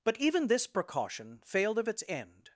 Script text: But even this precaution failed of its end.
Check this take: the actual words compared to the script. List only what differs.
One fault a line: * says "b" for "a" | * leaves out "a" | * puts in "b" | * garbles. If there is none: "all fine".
all fine